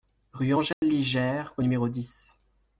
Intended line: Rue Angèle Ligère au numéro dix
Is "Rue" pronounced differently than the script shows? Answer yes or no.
no